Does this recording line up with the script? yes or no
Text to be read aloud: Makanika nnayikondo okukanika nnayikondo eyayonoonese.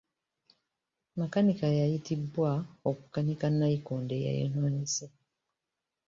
no